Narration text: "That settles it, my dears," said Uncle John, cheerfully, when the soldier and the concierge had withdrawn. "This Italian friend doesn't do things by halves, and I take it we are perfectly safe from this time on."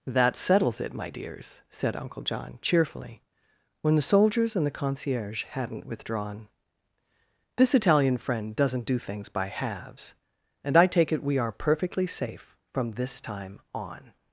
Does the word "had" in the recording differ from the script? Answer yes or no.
yes